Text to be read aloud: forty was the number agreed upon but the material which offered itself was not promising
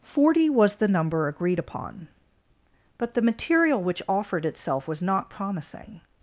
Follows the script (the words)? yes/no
yes